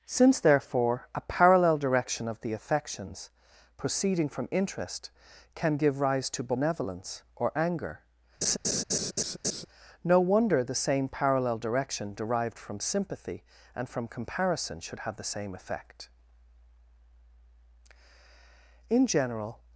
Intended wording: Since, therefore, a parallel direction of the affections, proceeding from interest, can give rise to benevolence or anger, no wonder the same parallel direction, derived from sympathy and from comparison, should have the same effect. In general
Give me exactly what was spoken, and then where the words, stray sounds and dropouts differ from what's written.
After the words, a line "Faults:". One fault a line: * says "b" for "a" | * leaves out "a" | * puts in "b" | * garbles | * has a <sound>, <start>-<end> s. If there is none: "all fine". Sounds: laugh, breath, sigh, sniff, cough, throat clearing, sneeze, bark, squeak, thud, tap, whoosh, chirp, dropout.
Since, therefore, a parallel direction of the affections, proceeding from interest, can give rise to benevolence or anger, no wonder the same parallel direction, derived from sympathy and from comparison, should have the same effect. In general
Faults:
* has a laugh, 8.4-9.7 s